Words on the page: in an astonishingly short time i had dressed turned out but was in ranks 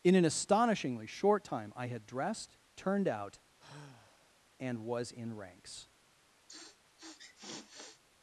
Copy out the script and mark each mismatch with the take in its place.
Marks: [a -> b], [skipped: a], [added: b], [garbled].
in an astonishingly short time i had dressed turned out [but -> and] was in ranks